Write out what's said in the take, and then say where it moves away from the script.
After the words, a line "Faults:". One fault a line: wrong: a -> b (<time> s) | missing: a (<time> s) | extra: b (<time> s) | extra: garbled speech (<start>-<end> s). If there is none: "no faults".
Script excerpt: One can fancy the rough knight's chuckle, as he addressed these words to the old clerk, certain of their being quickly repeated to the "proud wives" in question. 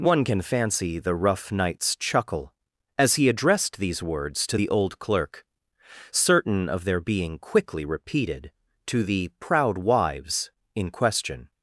One can fancy the rough knight's chuckle, as he addressed these words to the old clerk, certain of their being quickly repeated to the "proud wives" in question.
Faults:
no faults